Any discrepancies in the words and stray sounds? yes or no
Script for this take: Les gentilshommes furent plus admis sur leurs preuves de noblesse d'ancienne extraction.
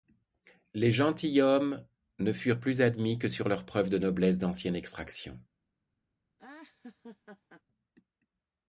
yes